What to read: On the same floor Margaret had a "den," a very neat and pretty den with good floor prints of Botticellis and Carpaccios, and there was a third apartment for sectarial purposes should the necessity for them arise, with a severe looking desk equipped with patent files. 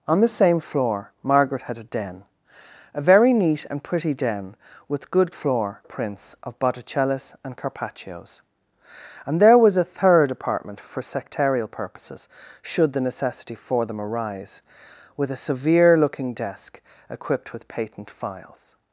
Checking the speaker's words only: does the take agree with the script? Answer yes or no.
yes